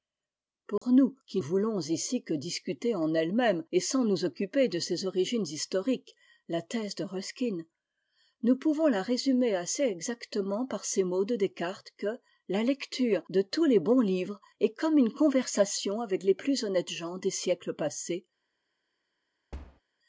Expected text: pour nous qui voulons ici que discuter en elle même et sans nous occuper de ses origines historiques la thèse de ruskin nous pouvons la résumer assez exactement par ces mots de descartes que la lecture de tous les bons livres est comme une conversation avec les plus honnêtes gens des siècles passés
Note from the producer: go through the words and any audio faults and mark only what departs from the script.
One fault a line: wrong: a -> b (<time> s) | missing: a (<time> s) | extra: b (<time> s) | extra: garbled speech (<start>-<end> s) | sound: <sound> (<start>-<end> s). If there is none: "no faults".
sound: dropout (0.8-0.8 s)
sound: thud (19.5-19.8 s)